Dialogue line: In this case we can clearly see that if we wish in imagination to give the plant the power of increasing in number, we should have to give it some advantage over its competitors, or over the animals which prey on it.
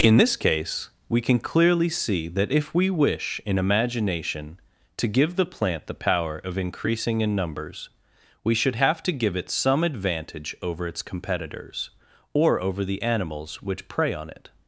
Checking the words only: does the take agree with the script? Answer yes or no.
no